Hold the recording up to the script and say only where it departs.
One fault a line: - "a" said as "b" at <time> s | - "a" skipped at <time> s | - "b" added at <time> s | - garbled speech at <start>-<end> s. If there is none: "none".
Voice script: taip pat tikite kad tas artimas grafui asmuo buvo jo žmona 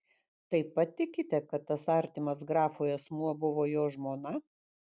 none